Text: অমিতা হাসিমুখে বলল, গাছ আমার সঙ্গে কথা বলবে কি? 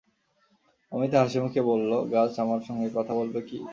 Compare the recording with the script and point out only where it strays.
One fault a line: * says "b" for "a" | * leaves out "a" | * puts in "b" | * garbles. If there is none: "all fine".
all fine